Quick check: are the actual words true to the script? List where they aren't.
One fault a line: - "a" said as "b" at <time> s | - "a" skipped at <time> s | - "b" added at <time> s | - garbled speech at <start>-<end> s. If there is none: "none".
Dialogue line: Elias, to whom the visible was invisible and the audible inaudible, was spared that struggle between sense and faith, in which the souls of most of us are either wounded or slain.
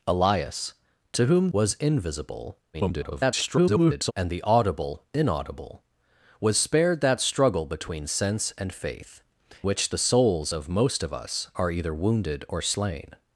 - "the visible" skipped at 1.5 s
- garbled speech at 2.7-4.1 s
- "in" skipped at 9.2 s